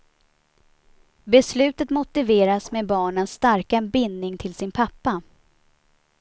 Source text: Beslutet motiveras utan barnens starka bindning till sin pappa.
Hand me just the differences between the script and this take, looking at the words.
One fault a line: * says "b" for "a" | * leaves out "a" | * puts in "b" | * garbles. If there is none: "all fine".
* says "med" for "utan"